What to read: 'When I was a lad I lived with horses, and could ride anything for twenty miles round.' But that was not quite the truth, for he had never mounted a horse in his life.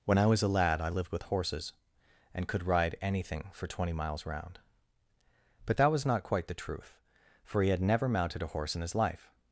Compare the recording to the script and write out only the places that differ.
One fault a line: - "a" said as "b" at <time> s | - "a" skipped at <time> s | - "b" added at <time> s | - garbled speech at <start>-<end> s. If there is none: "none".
none